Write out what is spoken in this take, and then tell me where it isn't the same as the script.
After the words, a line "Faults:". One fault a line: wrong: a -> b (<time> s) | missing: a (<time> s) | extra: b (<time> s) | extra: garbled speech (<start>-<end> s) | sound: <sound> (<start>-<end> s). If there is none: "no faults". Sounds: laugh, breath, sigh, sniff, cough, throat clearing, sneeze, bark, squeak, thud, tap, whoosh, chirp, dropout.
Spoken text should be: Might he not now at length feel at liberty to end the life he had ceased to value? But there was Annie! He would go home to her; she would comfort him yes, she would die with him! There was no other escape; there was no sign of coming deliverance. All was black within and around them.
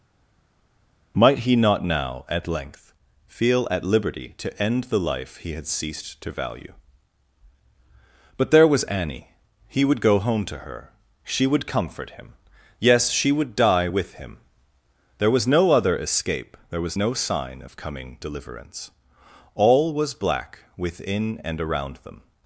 Might he not now at length feel at liberty to end the life he had ceased to value? But there was Annie! He would go home to her; she would comfort him yes, she would die with him! There was no other escape; there was no sign of coming deliverance. All was black within and around them.
Faults:
no faults